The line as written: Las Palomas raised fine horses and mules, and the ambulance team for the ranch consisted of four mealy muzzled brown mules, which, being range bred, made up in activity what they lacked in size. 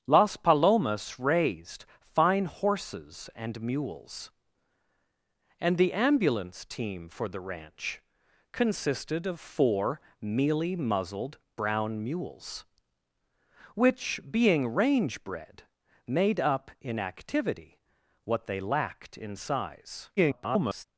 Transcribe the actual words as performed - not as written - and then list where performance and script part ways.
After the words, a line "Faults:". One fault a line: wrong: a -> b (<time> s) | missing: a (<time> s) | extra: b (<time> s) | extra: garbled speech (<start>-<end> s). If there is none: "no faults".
Las Palomas raised fine horses and mules, and the ambulance team for the ranch consisted of four mealy muzzled brown mules, which, being range bred, made up in activity what they lacked in size. [garbled]
Faults:
extra: garbled speech (20.2-20.9 s)